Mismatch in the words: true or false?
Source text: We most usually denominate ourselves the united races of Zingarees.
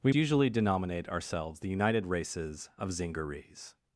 true